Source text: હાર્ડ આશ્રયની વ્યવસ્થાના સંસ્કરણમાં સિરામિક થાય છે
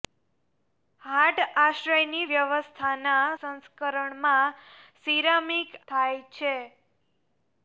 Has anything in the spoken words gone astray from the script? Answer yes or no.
no